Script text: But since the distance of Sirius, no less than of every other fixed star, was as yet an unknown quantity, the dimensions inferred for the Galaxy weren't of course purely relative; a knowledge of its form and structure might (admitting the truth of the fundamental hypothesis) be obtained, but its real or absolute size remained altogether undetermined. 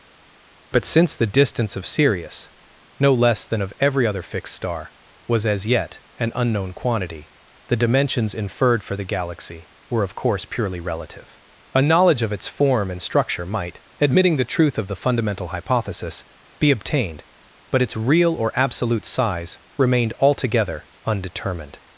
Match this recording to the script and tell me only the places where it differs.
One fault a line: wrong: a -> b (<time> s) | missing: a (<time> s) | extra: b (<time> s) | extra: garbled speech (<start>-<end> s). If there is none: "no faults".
wrong: weren't -> were (9.9 s)